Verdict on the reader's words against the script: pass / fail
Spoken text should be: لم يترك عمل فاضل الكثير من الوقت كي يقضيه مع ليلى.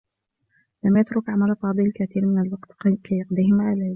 pass